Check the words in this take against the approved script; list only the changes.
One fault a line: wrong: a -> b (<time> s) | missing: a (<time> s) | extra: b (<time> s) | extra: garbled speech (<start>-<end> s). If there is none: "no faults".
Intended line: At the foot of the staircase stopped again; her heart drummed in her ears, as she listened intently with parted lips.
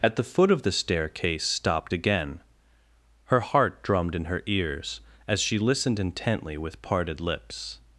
no faults